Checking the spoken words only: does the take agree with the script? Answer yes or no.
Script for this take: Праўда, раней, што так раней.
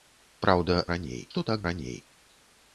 yes